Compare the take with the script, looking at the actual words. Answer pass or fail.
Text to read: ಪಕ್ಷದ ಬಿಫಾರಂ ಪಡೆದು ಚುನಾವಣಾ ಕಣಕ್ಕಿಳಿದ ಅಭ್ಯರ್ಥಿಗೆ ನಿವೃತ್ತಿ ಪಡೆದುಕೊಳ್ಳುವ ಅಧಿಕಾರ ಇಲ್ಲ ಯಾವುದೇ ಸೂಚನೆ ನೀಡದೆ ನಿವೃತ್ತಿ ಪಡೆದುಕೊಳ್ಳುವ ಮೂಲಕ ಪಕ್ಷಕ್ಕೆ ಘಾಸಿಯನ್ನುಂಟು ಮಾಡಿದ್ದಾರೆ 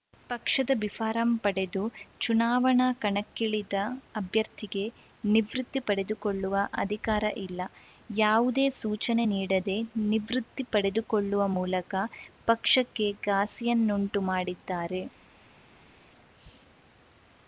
pass